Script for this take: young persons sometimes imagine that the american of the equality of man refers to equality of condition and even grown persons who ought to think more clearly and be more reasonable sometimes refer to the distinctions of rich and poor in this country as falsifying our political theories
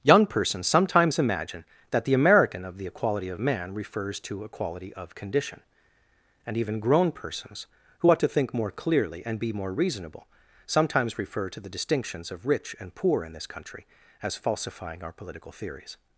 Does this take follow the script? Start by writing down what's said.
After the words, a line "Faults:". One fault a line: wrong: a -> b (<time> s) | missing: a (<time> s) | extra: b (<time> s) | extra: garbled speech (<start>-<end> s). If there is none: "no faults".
young persons sometimes imagine that the american of the equality of man refers to equality of condition and even grown persons who ought to think more clearly and be more reasonable sometimes refer to the distinctions of rich and poor in this country as falsifying our political theories
Faults:
no faults